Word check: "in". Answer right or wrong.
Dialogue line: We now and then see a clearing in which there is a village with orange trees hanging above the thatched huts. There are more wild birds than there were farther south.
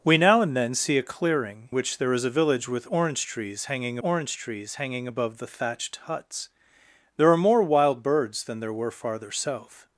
wrong